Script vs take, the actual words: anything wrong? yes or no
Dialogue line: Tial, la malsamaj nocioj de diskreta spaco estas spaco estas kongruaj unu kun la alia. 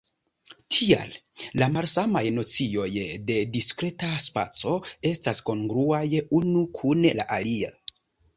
yes